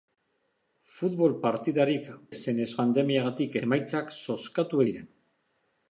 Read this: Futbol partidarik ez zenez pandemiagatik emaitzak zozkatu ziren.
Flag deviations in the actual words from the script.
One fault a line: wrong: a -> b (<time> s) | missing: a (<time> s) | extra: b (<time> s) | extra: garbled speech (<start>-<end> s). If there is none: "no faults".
no faults